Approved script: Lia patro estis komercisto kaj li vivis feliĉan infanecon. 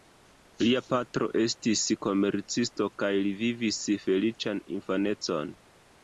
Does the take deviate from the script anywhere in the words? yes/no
no